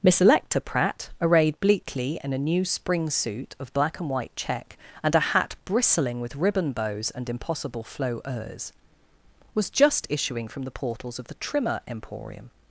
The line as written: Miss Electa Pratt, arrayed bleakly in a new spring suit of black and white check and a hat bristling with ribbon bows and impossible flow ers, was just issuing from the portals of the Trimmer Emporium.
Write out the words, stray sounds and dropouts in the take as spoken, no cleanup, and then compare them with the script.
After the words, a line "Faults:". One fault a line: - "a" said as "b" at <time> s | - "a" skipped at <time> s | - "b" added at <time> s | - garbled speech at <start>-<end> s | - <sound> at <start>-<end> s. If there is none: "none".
Miss Electa Pratt, arrayed bleakly in a new spring suit of black and white check and a hat bristling with ribbon bows and impossible flow ers, was just issuing from the portals of the Trimmer Emporium.
Faults:
none